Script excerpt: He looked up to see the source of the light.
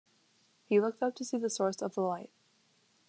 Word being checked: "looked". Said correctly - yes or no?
yes